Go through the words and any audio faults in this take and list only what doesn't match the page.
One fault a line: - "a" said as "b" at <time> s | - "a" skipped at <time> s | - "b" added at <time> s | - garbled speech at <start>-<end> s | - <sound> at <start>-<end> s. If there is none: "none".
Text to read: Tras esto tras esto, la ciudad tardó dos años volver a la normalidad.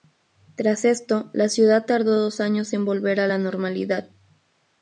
- "tras esto" skipped at 1.3 s
- "en" added at 2.7 s